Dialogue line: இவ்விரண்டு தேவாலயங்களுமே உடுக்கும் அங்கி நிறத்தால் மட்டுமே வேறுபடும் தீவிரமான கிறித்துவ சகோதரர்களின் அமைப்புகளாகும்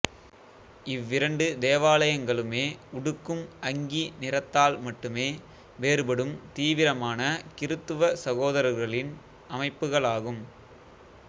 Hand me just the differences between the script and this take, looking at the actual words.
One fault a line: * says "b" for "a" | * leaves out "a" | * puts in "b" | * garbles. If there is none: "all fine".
all fine